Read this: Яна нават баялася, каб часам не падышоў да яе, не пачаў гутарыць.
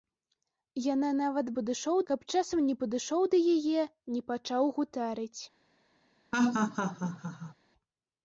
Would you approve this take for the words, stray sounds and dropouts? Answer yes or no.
no